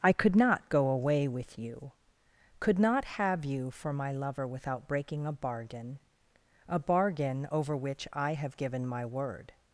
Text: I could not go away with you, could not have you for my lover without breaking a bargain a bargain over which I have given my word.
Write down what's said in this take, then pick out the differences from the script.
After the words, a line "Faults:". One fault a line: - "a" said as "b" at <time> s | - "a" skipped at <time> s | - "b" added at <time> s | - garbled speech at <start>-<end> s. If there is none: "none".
I could not go away with you, could not have you for my lover without breaking a bargain a bargain over which I have given my word.
Faults:
none